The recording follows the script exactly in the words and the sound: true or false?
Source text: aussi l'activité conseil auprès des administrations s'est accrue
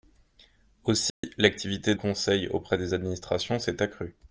false